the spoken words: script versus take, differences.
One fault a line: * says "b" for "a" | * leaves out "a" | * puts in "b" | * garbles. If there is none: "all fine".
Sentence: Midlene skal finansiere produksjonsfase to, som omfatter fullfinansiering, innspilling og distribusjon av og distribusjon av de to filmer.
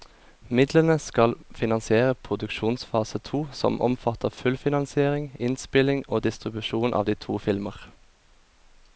* leaves out "og distribusjon av"